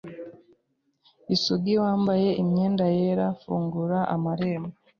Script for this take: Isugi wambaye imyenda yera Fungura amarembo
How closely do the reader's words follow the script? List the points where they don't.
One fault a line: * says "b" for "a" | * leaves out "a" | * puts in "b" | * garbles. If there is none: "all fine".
all fine